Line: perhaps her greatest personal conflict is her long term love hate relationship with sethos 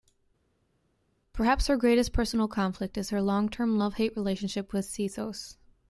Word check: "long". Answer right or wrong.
right